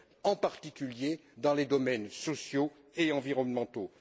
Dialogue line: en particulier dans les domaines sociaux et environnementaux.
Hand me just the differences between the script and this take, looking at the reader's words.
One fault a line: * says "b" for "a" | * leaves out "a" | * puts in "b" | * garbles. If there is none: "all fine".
all fine